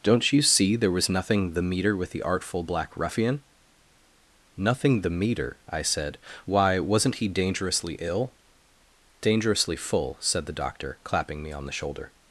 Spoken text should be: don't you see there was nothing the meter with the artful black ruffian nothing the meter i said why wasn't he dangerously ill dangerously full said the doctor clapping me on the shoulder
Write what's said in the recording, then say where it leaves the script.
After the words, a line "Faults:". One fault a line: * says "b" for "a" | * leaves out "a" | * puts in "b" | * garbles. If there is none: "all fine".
don't you see there was nothing the meter with the artful black ruffian nothing the meter i said why wasn't he dangerously ill dangerously full said the doctor clapping me on the shoulder
Faults:
all fine